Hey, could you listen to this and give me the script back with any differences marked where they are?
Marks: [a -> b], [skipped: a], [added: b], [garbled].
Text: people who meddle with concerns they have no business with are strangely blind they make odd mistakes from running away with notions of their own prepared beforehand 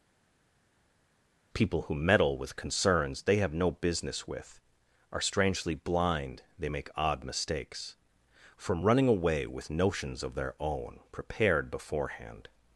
people who meddle with concerns they have no business with are strangely blind they make odd mistakes from running away with notions of their own prepared beforehand